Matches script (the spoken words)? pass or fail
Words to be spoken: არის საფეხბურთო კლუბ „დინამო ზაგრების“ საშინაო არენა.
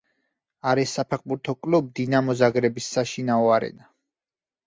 pass